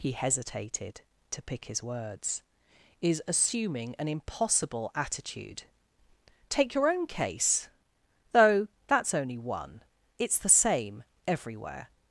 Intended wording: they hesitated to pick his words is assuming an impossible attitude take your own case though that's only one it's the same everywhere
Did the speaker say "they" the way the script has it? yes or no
no